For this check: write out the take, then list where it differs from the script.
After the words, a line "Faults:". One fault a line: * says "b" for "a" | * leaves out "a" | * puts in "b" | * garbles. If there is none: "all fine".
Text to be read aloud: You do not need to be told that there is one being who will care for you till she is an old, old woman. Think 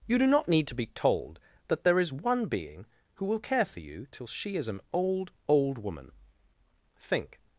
You do not need to be told that there is one being who will care for you till she is an old, old woman. Think
Faults:
all fine